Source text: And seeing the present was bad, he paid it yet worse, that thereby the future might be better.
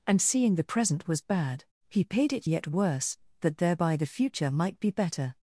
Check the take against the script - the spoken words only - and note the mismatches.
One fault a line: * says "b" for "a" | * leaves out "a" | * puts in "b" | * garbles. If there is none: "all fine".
all fine